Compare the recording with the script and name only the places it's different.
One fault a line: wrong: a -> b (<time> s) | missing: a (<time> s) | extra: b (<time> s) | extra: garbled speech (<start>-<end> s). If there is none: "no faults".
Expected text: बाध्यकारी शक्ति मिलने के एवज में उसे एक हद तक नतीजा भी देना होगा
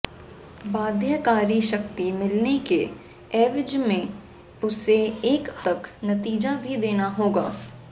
missing: हद (5.5 s)